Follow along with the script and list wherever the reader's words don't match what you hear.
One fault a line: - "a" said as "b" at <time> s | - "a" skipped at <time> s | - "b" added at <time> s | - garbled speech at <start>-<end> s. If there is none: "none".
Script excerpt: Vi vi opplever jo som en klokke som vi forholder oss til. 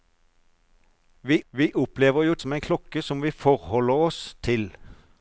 none